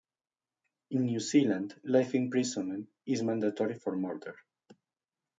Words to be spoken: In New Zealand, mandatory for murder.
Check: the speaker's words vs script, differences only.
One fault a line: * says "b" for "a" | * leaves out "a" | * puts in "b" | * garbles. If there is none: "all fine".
* puts in "life imprisonment is"